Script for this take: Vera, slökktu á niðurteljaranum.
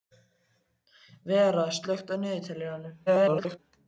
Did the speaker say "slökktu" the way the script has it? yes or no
yes